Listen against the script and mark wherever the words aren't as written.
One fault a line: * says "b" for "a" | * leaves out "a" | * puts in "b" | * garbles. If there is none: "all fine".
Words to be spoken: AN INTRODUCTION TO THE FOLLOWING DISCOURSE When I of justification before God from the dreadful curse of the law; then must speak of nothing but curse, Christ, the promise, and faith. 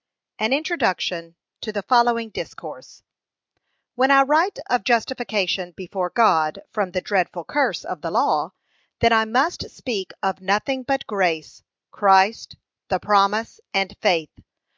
* puts in "write"
* puts in "I"
* says "grace" for "curse"